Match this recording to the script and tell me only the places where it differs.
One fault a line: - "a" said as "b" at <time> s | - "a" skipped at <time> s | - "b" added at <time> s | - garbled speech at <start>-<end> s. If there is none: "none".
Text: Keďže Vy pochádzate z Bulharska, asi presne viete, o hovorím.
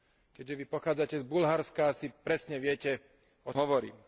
none